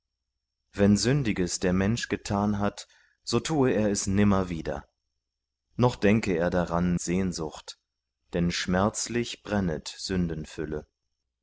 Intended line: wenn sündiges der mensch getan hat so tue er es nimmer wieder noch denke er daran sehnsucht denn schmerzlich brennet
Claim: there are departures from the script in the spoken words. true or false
false